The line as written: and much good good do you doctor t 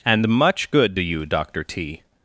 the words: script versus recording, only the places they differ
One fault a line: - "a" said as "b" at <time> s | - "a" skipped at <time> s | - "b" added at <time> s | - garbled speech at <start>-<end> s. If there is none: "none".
- "good" skipped at 0.9 s